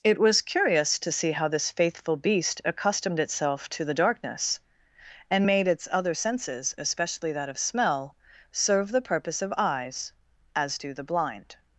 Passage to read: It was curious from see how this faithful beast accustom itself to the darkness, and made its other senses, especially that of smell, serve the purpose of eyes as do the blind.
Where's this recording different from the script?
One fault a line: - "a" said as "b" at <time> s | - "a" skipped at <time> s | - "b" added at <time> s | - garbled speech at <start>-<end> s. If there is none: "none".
- "from" said as "to" at 1.0 s
- "accustom" said as "accustomed" at 2.6 s